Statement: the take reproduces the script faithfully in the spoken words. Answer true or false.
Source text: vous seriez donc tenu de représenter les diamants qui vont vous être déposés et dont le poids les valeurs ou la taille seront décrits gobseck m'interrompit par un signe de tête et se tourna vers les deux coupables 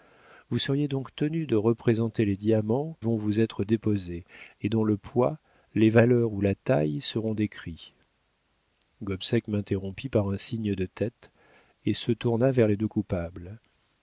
false